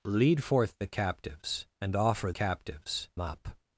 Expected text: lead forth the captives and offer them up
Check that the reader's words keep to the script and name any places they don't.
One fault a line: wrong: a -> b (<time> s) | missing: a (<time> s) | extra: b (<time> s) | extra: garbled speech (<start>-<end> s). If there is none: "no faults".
wrong: them -> captives (2.3 s)